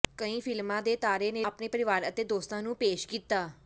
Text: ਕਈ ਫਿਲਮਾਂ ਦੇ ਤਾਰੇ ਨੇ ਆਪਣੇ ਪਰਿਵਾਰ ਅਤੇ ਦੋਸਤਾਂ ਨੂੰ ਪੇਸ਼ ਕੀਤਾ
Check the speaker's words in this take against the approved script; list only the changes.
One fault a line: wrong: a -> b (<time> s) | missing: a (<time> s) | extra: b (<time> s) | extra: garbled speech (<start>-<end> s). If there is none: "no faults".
no faults